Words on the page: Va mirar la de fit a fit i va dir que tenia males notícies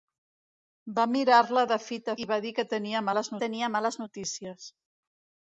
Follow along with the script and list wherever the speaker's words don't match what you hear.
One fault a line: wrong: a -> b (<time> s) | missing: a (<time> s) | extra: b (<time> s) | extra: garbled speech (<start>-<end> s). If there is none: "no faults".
missing: fit (2.2 s)
extra: tenia males (3.4 s)